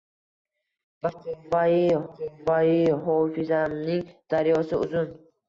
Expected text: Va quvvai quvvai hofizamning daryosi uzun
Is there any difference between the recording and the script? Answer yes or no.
no